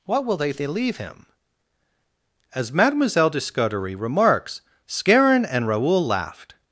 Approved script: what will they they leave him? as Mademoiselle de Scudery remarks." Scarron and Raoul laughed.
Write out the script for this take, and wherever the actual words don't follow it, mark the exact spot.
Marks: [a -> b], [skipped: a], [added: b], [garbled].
what will they they leave him? as Mademoiselle de Scudery remarks." Scarron and Raoul laughed.